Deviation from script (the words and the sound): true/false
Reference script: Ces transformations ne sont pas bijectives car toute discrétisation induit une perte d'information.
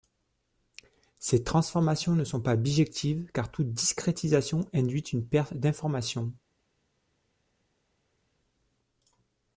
false